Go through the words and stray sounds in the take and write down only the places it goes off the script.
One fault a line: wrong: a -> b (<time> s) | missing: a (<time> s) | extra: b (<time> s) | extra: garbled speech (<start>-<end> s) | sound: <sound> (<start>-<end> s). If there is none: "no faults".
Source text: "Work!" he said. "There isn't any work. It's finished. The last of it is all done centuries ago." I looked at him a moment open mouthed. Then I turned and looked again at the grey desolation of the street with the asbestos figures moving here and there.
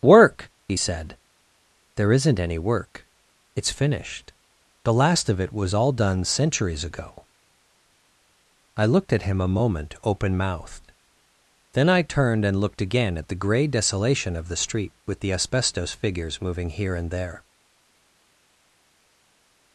wrong: is -> was (5.5 s)